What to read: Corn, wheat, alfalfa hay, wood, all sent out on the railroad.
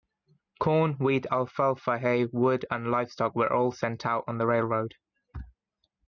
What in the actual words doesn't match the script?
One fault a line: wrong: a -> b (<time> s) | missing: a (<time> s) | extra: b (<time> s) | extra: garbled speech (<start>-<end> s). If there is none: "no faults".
extra: and livestock were (2.7 s)